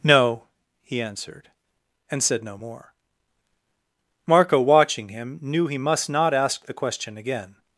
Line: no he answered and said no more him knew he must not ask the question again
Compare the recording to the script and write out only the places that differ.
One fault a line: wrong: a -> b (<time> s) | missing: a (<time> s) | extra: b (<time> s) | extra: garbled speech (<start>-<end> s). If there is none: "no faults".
extra: marco watching (4.3 s)